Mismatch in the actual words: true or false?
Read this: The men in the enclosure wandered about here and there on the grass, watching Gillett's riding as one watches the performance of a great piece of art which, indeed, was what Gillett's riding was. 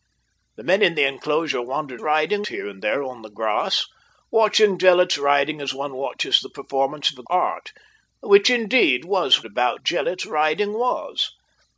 true